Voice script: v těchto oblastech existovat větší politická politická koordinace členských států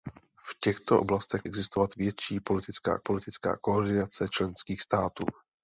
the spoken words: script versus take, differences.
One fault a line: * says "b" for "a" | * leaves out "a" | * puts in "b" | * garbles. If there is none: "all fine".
all fine